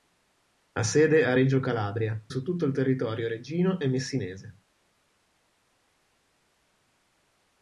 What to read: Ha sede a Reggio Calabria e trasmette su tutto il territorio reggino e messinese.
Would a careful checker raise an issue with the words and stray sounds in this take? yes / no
yes